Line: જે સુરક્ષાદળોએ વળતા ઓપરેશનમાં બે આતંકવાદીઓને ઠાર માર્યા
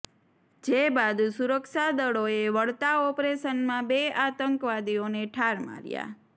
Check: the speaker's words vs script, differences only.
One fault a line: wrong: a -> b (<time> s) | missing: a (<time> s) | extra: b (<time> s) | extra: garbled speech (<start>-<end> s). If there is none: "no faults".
extra: બાદ (0.9 s)